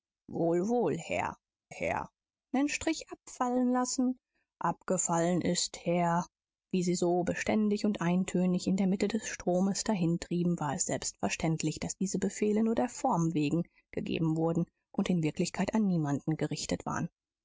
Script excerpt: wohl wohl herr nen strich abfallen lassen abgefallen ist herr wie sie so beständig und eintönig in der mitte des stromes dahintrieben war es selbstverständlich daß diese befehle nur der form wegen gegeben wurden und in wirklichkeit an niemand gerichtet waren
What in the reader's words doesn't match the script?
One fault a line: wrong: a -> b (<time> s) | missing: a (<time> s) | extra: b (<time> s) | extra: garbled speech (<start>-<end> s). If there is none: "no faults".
extra: herr (1.7 s)